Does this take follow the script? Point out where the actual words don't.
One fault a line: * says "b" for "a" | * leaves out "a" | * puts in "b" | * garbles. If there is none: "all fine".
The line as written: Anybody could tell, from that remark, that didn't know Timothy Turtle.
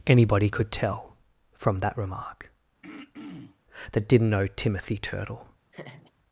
all fine